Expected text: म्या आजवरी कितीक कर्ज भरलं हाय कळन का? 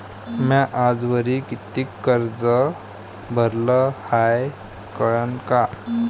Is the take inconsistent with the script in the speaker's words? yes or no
no